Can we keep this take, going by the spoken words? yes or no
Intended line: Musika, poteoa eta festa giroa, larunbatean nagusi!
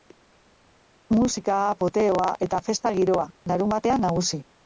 yes